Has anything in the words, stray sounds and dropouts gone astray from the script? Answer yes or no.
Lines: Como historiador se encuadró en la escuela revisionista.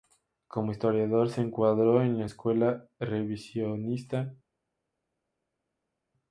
no